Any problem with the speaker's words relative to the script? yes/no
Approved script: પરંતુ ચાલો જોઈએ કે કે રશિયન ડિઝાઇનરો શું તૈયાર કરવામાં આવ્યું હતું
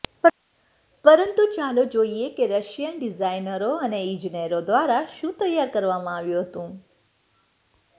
yes